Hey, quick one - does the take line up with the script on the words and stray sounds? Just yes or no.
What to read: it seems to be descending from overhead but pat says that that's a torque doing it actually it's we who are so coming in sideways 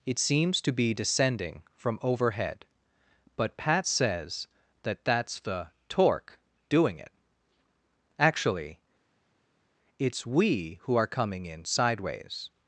no